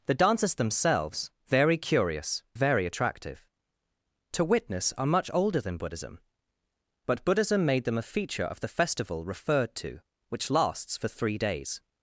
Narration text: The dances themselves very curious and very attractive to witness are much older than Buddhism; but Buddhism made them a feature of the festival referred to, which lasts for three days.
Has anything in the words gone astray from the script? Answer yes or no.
yes